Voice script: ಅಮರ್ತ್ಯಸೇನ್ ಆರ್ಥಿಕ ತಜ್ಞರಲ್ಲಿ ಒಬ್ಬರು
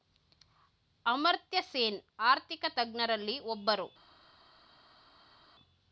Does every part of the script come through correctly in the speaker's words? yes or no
yes